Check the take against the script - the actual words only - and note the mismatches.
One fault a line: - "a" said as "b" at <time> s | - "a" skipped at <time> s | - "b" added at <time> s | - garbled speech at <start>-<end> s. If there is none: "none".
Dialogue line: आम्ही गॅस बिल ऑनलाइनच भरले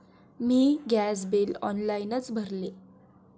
- "आम्ही" said as "मी" at 0.4 s